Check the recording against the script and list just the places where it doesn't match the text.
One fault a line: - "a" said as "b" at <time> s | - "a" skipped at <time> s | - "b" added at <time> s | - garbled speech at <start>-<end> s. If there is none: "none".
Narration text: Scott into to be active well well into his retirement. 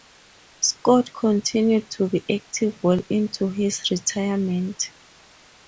- "into" said as "continued" at 1.1 s
- "well" skipped at 3.0 s